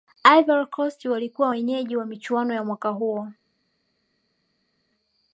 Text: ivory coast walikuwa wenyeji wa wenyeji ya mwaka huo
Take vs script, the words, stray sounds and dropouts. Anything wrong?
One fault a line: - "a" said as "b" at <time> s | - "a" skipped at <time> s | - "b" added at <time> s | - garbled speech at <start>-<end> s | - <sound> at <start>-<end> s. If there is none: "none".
- "wenyeji" said as "michuano" at 2.0 s